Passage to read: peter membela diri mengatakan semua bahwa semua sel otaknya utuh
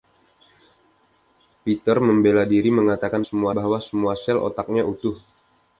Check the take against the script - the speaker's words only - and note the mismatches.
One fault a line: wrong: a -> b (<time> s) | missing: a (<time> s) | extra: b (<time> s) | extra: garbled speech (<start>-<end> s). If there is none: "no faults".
no faults